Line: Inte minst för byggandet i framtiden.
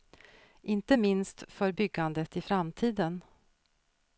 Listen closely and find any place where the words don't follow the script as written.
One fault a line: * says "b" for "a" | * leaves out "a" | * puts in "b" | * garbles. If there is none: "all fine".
all fine